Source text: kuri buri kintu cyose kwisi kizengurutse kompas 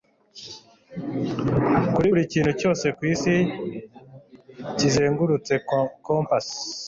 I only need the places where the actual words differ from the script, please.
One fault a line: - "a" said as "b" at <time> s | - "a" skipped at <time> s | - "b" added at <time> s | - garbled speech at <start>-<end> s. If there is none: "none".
none